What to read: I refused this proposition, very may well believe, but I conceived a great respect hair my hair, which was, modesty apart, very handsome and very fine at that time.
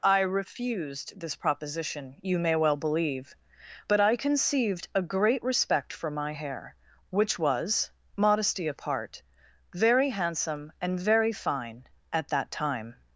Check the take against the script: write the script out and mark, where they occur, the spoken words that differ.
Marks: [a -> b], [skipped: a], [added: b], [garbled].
I refused this proposition, [very -> you] may well believe, but I conceived a great respect [hair -> for] my hair, which was, modesty apart, very handsome and very fine at that time.